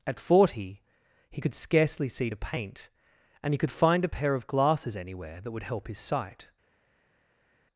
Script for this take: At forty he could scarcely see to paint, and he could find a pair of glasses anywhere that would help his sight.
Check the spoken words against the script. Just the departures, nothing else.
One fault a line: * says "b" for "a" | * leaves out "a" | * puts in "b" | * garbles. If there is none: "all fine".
all fine